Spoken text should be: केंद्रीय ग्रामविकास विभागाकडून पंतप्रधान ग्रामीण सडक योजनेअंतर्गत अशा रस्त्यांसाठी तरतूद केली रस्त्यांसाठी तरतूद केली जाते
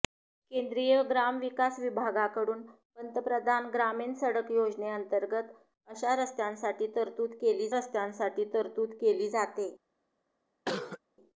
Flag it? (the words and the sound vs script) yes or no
yes